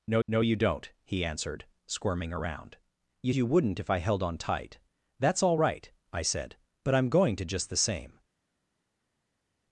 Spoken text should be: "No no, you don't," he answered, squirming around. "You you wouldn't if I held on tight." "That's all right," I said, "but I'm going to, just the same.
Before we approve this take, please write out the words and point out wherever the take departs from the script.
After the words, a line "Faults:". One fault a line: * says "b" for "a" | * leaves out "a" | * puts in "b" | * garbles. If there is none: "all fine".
"No no, you don't," he answered, squirming around. "You you wouldn't if I held on tight." "That's all right," I said, "but I'm going to, just the same.
Faults:
all fine